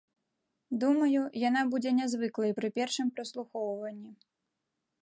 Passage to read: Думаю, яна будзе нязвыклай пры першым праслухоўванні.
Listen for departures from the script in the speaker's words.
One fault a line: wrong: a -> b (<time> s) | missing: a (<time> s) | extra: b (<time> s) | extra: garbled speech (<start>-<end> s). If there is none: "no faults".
no faults